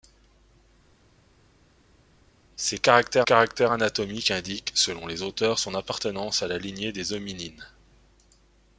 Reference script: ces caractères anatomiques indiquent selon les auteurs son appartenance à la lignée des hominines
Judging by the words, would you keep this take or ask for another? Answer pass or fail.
fail